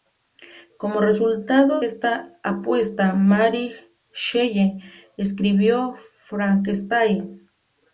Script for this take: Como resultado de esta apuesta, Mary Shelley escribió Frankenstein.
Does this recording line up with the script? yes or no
no